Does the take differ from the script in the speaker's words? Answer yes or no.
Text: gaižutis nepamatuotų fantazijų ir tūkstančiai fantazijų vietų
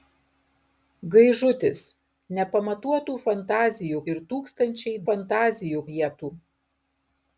no